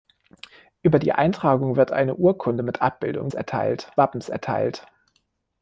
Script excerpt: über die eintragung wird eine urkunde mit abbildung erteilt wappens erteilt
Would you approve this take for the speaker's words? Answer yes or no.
yes